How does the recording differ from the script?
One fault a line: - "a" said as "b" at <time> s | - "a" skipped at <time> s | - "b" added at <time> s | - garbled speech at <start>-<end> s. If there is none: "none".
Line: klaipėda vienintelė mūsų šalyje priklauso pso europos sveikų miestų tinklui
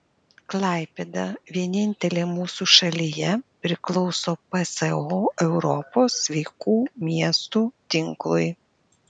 none